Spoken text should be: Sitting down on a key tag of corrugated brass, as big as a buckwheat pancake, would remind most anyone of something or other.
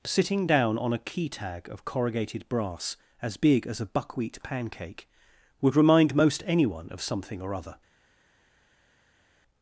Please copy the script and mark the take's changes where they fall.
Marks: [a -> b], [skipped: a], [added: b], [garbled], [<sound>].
Sitting down on a key tag of corrugated brass, as big as a buckwheat pancake, would remind most anyone of something or other.